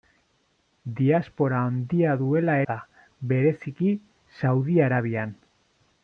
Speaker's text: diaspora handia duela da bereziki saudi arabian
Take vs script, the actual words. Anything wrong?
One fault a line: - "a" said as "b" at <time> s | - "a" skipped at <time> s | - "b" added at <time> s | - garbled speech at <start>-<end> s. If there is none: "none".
none